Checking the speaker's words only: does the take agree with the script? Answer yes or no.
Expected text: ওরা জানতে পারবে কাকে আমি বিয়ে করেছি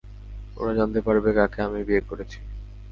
yes